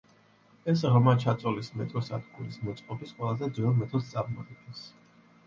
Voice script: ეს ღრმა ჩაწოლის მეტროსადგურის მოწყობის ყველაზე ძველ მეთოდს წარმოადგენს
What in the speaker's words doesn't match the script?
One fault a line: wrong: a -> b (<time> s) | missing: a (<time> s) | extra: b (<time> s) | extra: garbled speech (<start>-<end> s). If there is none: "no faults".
no faults